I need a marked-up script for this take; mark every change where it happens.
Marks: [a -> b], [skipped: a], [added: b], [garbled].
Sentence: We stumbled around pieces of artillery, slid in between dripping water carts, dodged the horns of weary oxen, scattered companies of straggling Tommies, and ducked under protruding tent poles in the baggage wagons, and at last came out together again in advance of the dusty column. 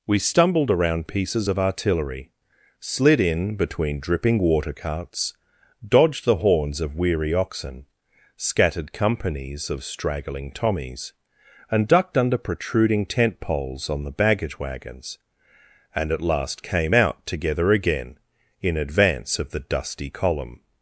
We stumbled around pieces of artillery, slid in between dripping water carts, dodged the horns of weary oxen, scattered companies of straggling Tommies, and ducked under protruding tent poles [in -> on] the baggage wagons, and at last came out together again in advance of the dusty column.